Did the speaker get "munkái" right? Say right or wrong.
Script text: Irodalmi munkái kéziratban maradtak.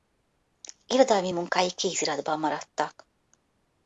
right